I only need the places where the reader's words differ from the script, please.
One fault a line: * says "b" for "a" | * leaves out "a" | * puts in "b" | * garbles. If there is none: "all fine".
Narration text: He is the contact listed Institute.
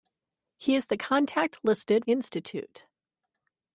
all fine